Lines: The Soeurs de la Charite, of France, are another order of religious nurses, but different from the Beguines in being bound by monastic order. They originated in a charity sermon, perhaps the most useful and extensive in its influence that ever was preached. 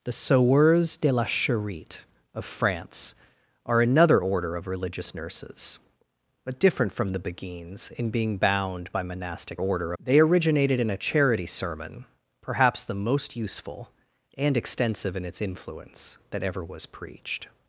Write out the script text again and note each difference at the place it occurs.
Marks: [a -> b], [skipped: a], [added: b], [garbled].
The Soeurs de la Charite, of France, are another order of religious nurses, but different from the Beguines in being bound by monastic order. They originated in a charity sermon, perhaps the most useful and extensive in its influence that ever was preached.